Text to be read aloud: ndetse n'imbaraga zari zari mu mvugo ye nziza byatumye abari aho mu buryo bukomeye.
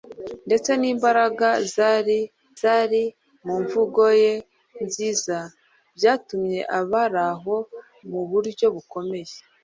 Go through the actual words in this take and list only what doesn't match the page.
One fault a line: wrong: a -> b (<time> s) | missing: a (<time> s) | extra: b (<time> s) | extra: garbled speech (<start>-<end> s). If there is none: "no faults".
no faults